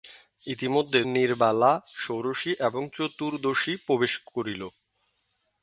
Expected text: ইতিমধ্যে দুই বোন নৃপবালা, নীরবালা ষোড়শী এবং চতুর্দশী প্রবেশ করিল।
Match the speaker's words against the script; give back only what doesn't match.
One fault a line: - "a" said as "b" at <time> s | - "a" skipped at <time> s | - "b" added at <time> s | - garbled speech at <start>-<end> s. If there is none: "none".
- "দুই বোন নৃপবালা" skipped at 1.0 s